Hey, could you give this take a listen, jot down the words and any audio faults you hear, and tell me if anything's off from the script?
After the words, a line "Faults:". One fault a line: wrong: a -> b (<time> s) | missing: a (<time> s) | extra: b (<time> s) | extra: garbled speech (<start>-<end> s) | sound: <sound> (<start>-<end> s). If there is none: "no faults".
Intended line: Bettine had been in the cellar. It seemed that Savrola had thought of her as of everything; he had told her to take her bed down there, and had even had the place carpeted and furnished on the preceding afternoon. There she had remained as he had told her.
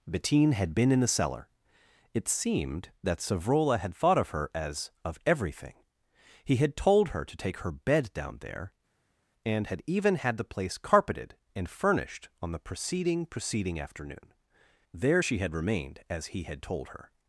Bettine had been in the cellar. It seemed that Savrola had thought of her as of everything; he had told her to take her bed down there, and had even had the place carpeted and furnished on the preceding preceding afternoon. There she had remained as he had told her.
Faults:
extra: preceding (13.3 s)